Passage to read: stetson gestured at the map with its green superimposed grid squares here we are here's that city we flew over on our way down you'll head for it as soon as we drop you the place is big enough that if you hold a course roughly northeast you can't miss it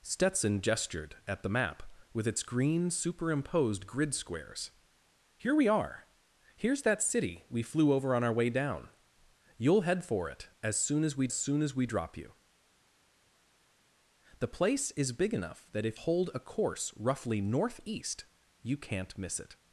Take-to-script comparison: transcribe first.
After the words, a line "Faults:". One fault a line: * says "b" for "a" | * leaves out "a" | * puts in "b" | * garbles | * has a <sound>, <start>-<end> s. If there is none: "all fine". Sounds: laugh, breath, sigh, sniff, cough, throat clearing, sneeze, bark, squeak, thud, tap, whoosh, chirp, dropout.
stetson gestured at the map with its green superimposed grid squares here we are here's that city we flew over on our way down you'll head for it as soon as we soon as we drop you the place is big enough that if hold a course roughly northeast you can't miss it
Faults:
* puts in "soon as we"
* leaves out "you"